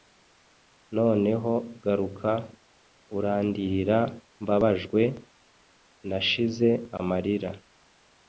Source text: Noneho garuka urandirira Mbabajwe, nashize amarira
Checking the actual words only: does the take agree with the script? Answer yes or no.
yes